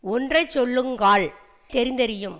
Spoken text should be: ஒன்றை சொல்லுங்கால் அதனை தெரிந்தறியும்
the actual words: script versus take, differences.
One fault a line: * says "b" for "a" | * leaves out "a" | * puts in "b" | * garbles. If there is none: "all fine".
* leaves out "அதனை"